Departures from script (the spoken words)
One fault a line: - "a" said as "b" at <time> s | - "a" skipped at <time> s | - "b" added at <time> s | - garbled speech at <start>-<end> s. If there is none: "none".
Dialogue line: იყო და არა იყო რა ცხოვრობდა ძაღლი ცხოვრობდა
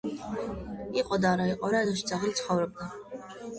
- "ცხოვრობდა" said as "ეზოში" at 1.9 s